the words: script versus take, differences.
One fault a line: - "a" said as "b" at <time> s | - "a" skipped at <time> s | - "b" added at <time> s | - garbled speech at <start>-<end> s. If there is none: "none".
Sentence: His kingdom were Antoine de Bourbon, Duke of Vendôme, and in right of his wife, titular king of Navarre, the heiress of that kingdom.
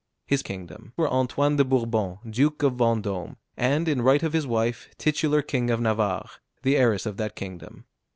none